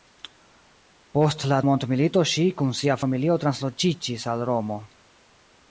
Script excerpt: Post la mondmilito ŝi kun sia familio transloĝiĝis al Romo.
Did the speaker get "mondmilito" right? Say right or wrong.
right